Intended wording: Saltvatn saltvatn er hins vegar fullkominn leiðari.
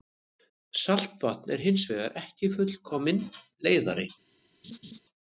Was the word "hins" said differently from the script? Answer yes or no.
no